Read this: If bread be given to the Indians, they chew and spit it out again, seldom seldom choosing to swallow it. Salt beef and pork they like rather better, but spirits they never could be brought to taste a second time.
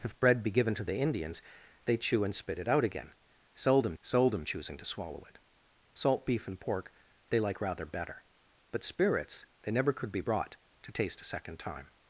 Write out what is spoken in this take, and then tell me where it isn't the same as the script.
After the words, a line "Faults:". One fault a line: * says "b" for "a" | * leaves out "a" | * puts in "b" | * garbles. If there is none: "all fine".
If bread be given to the Indians, they chew and spit it out again, seldom seldom choosing to swallow it. Salt beef and pork they like rather better, but spirits they never could be brought to taste a second time.
Faults:
all fine